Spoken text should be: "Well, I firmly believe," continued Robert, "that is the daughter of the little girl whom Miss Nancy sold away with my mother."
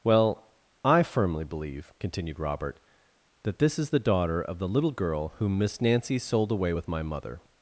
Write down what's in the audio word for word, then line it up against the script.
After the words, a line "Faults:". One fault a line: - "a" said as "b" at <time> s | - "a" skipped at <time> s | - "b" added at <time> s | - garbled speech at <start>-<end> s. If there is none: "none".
"Well, I firmly believe," continued Robert, "that this is the daughter of the little girl whom Miss Nancy sold away with my mother."
Faults:
- "this" added at 3.6 s